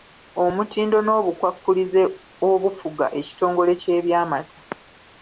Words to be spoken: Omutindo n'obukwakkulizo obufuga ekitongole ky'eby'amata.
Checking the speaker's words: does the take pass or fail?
pass